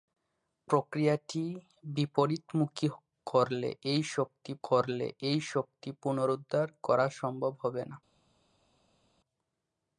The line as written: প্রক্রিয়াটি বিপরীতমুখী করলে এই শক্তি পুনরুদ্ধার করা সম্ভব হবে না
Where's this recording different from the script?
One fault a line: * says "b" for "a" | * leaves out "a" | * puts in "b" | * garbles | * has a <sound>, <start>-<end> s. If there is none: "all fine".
* puts in "করলে এই শক্তি"